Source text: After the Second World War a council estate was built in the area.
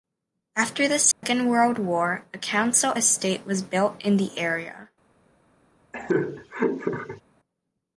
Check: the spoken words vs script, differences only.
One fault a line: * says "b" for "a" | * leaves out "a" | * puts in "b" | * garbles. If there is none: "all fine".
all fine